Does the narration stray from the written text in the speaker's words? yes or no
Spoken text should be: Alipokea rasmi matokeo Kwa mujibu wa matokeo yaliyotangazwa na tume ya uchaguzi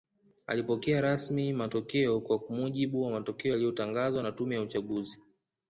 no